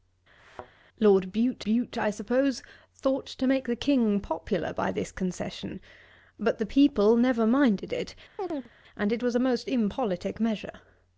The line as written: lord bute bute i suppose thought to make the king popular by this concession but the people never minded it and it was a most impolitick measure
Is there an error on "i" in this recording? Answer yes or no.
no